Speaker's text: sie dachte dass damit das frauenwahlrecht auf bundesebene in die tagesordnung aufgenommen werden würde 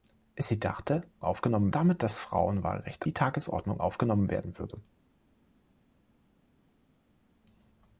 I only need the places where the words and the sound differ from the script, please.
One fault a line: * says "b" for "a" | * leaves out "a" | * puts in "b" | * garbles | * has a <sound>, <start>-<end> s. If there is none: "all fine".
* says "aufgenommen" for "dass"
* leaves out "auf bundesebene in"